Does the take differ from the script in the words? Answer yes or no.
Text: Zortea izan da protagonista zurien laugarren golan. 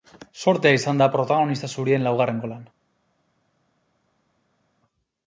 no